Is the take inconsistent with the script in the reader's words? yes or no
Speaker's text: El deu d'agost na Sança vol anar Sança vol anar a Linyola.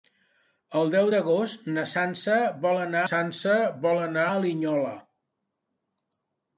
no